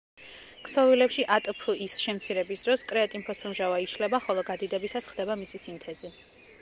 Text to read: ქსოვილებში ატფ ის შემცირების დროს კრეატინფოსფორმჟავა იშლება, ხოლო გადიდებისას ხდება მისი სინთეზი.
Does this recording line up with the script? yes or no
yes